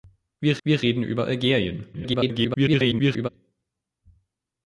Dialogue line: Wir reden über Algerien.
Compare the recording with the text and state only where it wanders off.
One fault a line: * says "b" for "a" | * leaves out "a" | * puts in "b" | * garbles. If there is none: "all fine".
* puts in "wir"
* garbles